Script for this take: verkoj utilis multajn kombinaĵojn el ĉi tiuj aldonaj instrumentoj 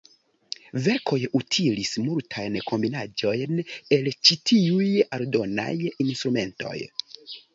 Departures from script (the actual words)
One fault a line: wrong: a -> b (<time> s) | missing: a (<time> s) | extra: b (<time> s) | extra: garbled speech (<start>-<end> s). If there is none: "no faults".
no faults